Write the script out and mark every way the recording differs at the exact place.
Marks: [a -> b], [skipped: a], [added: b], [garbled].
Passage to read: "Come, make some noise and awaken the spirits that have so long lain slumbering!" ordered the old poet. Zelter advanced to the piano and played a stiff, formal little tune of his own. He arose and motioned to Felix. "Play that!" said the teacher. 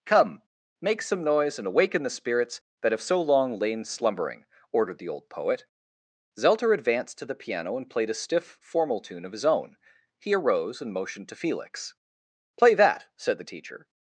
"Come, make some noise and awaken the spirits that have so long lain slumbering!" ordered the old poet. Zelter advanced to the piano and played a stiff, formal [skipped: little] tune of his own. He arose and motioned to Felix. "Play that!" said the teacher.